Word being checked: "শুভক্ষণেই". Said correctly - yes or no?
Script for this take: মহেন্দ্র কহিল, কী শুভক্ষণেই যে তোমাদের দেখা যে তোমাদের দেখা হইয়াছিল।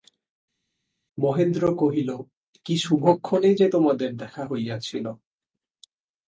yes